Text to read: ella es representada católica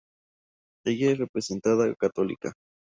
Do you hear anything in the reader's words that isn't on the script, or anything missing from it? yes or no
no